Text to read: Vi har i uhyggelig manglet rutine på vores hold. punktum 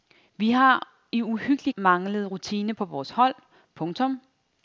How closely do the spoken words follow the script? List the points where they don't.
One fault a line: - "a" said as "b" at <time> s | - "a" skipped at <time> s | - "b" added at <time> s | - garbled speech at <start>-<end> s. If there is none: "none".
none